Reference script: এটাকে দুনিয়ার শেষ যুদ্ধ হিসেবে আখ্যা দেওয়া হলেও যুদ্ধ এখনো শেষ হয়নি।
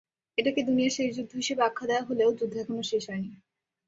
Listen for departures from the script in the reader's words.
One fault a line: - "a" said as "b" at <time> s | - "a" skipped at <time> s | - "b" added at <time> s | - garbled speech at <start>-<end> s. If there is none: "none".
none